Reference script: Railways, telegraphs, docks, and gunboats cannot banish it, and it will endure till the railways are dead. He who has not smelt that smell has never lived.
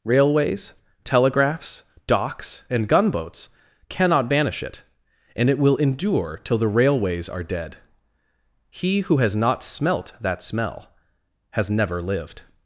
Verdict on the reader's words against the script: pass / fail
pass